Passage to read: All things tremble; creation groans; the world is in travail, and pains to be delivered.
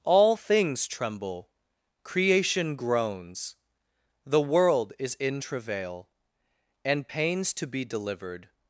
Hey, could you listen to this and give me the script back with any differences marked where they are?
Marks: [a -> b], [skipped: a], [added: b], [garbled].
All things tremble; creation groans; the world is in travail, and pains to be delivered.